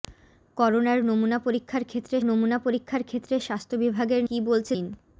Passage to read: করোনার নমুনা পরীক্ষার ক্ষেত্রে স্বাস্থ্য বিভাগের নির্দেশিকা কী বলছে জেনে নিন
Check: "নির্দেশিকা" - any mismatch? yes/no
yes